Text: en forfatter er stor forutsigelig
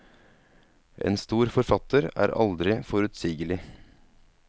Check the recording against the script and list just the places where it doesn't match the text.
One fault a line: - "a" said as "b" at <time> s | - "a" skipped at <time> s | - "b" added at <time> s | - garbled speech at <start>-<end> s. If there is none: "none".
- "stor" added at 1.2 s
- "stor" said as "aldri" at 2.5 s